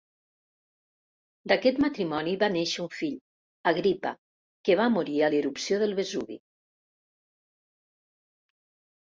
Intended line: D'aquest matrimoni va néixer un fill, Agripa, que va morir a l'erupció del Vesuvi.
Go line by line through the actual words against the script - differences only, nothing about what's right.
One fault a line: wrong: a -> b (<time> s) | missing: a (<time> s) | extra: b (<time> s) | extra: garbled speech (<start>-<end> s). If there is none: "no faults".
no faults